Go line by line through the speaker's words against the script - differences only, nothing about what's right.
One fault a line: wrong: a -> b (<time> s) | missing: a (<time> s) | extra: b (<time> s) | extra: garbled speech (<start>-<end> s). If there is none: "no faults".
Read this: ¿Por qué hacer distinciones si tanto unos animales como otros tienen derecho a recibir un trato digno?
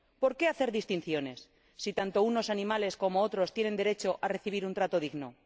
no faults